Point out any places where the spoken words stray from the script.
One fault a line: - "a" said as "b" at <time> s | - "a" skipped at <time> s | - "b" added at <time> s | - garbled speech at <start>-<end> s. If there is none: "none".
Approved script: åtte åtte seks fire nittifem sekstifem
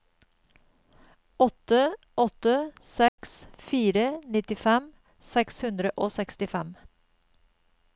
- "seks hundre og" added at 5.3 s